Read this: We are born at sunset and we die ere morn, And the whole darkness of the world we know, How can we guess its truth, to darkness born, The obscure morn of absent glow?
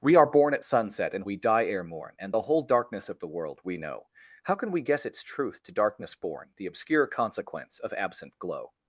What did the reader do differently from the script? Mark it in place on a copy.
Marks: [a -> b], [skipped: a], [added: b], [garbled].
We are born at sunset and we die ere morn, And the whole darkness of the world we know, How can we guess its truth, to darkness born, The obscure [morn -> consequence] of absent glow?